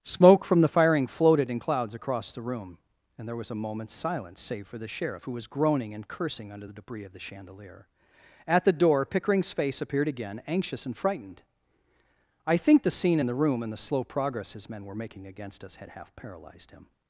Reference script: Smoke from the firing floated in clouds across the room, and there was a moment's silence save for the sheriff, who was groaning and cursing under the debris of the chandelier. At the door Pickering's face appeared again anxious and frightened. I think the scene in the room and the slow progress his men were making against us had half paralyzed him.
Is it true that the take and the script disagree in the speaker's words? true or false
false